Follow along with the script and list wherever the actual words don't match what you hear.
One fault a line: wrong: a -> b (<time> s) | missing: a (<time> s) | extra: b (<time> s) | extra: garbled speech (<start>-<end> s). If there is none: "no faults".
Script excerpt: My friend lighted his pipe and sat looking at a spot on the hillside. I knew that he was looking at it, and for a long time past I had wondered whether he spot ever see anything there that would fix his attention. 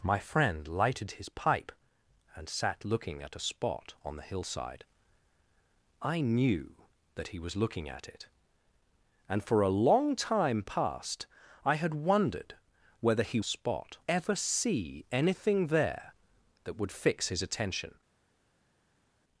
no faults